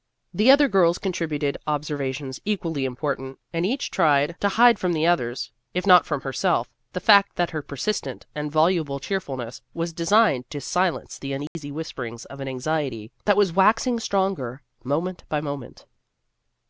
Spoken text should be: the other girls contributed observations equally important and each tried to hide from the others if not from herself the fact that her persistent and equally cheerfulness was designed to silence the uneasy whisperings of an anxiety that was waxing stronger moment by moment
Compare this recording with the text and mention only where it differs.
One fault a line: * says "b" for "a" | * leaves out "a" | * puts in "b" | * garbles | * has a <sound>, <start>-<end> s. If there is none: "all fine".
* says "voluble" for "equally"
* has a dropout, 11.5-11.6 s